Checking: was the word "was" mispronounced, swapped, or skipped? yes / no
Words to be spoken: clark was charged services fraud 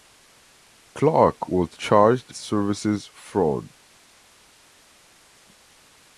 no